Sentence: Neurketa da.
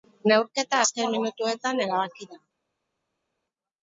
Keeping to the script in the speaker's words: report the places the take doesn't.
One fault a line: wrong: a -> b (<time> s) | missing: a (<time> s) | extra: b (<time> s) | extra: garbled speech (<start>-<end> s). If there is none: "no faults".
extra: azken minutuetan erabaki (0.8 s)